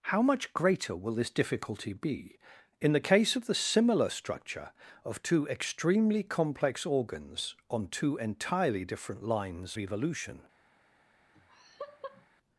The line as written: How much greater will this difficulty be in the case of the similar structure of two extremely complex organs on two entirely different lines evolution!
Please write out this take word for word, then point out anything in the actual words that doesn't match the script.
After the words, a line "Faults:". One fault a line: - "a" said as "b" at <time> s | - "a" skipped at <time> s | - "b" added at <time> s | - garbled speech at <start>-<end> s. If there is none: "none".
How much greater will this difficulty be in the case of the similar structure of two extremely complex organs on two entirely different lines evolution!
Faults:
none